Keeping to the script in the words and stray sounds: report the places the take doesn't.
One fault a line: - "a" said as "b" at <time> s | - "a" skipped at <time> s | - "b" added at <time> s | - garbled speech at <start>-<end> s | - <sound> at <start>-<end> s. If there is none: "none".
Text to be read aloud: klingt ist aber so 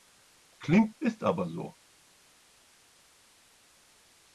none